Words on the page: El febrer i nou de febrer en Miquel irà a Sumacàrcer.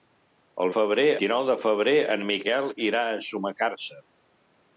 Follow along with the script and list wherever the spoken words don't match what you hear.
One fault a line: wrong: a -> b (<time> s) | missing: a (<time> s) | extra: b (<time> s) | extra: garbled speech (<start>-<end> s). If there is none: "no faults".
no faults